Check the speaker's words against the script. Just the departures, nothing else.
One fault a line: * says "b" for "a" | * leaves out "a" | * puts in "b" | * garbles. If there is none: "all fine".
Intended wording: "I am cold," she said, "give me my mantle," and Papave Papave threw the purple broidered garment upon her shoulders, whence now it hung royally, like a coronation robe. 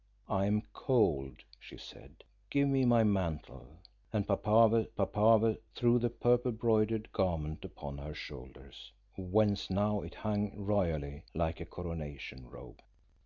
all fine